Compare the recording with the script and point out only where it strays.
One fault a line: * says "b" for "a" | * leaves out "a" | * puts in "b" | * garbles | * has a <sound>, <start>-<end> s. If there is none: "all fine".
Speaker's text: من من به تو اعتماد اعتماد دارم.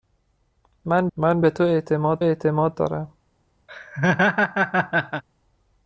* has a laugh, 3.7-5.2 s